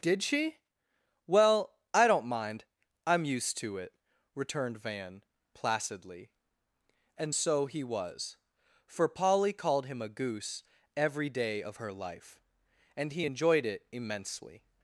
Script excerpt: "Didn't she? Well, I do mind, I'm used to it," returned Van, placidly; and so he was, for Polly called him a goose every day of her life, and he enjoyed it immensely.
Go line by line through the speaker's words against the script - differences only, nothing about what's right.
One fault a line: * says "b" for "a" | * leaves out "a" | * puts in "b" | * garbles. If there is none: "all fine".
* says "Did" for "Didn't"
* says "don't" for "do"